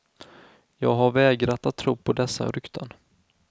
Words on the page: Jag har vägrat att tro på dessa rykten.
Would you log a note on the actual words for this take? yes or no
no